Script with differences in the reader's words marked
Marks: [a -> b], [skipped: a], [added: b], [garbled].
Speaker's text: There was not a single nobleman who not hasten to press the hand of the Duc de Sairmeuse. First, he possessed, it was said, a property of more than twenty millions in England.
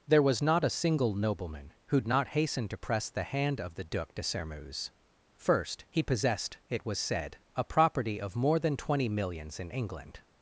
There was not a single nobleman who not hasten to press the hand of the Duc de Sairmeuse. First, he possessed, it was said, a property of more than twenty millions in England.